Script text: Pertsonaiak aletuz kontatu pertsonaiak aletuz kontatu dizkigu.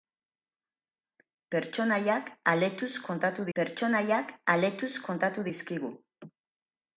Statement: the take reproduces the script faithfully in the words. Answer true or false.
true